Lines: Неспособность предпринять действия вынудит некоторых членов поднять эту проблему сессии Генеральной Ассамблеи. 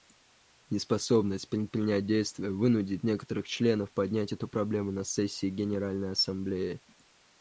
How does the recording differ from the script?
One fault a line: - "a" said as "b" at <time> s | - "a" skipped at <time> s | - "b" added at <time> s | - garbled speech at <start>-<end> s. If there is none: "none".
- "на" added at 4.9 s